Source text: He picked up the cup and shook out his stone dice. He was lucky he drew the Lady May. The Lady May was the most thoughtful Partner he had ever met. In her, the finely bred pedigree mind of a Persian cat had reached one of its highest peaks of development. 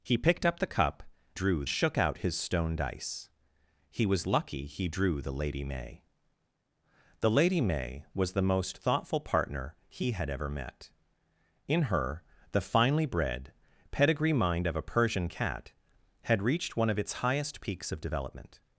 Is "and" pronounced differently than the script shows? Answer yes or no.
yes